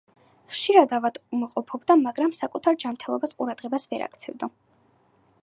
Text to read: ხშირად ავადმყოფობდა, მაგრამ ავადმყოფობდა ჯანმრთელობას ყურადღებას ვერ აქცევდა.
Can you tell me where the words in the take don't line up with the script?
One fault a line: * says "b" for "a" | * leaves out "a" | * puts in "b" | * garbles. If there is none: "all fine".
* says "საკუთარ" for "ავადმყოფობდა"